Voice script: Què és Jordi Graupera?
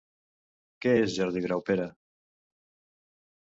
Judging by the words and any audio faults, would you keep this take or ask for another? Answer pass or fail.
pass